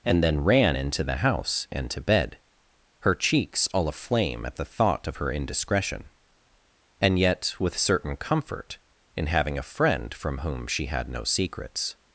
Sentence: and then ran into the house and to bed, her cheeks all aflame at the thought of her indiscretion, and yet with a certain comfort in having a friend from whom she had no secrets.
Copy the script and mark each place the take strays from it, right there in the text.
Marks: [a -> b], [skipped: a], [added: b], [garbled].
and then ran into the house and to bed, her cheeks all aflame at the thought of her indiscretion, and yet with [skipped: a] certain comfort in having a friend from whom she had no secrets.